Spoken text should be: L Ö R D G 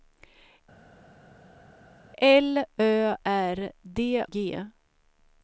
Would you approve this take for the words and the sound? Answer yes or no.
yes